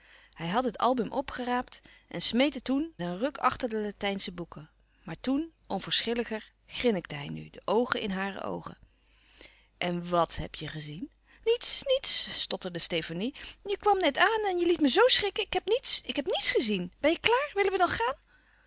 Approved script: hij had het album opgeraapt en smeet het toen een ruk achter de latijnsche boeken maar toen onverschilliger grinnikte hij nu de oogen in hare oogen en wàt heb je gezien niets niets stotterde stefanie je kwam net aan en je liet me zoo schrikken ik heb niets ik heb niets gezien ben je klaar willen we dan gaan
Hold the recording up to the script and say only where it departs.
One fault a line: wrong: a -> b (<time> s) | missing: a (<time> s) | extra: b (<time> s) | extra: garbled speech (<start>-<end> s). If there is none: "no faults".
no faults